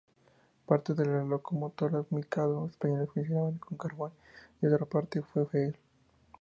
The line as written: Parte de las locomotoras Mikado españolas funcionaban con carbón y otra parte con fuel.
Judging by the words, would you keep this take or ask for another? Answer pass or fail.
pass